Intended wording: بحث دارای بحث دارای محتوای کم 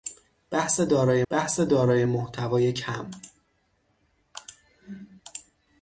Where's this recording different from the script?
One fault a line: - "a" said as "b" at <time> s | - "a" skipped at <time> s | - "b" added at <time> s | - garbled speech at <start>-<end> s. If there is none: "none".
none